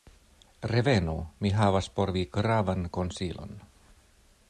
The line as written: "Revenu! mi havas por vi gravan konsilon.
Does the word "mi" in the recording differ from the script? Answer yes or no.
no